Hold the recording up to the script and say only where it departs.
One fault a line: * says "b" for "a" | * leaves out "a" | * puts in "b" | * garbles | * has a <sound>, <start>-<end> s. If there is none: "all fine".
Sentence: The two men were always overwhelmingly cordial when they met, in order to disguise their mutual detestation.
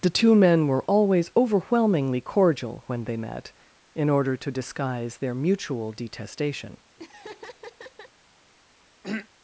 * has a laugh, 7.0-8.1 s
* has a throat clearing, 9.0-9.3 s